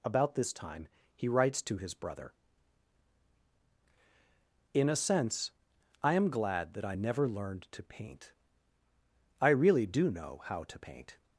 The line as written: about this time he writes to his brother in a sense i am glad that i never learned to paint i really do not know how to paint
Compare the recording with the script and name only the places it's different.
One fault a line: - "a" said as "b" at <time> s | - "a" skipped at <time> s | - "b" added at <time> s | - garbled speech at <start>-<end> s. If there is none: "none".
- "not" skipped at 10.1 s